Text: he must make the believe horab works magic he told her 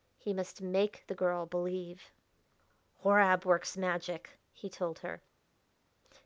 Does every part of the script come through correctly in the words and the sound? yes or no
no